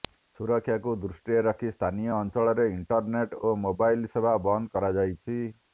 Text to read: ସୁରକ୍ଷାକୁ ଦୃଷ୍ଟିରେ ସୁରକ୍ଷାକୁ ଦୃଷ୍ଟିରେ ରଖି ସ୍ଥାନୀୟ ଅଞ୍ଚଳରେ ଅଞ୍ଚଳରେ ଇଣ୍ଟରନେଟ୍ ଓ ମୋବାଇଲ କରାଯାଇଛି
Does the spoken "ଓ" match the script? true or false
true